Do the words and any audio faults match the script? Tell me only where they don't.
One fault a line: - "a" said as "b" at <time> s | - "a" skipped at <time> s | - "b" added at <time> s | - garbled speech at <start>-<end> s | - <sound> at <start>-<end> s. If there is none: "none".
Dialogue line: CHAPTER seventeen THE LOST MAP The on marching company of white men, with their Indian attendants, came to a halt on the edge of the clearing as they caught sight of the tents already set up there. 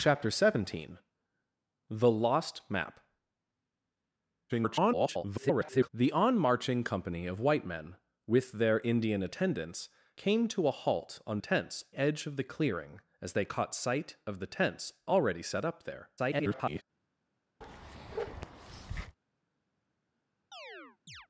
- garbled speech at 4.5-5.9 s
- "the" said as "tents" at 11.4 s
- garbled speech at 16.2-16.8 s
- bark at 17.6-19.2 s
- chirp at 20.5-21.3 s